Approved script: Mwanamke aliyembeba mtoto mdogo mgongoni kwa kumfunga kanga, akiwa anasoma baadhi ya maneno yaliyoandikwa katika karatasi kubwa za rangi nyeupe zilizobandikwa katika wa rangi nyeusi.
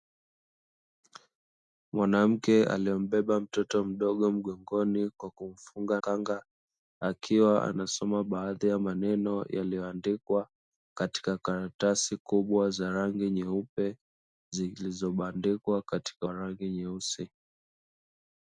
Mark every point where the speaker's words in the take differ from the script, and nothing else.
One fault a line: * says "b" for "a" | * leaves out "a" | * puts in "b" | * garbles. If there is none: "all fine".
all fine